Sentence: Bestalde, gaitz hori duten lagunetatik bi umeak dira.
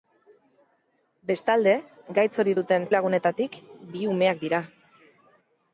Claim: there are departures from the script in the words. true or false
false